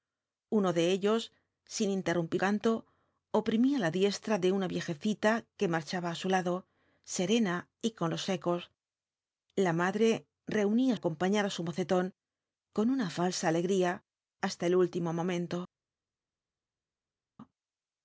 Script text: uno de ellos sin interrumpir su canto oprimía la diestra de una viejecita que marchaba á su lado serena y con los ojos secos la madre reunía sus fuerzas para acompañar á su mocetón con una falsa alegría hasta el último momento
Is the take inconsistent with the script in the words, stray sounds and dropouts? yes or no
yes